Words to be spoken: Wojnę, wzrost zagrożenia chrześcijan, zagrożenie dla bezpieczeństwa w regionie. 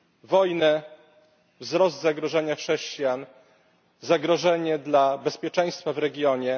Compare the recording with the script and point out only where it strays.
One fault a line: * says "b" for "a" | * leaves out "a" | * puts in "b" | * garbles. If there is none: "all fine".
all fine